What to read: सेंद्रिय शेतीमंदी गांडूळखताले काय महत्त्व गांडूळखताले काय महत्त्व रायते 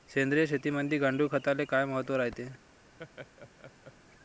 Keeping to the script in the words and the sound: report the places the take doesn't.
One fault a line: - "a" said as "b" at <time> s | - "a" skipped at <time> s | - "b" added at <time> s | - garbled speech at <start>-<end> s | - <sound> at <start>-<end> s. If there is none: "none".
- "गांडूळखताले काय महत्त्व" skipped at 2.1 s
- laugh at 3.0-3.9 s